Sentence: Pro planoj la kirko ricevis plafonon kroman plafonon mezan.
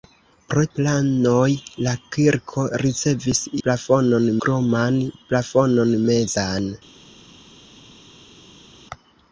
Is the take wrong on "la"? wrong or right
right